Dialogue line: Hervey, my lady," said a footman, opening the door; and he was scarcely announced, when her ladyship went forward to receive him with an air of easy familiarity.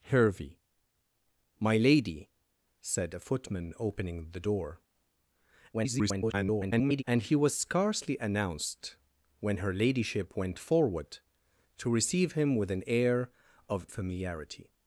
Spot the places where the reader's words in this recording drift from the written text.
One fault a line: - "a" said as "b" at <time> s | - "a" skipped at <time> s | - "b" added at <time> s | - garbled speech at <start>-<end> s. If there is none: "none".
- garbled speech at 5.7-7.0 s
- "easy" skipped at 13.9 s